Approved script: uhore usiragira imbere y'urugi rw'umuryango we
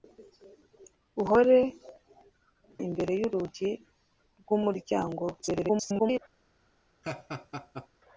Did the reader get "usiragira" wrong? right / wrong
wrong